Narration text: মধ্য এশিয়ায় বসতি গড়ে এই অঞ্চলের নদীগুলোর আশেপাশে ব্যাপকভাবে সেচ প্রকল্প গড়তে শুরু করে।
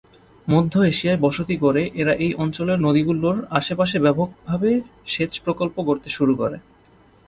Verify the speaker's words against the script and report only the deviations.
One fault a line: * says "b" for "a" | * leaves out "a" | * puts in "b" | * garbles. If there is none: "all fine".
* puts in "এরা"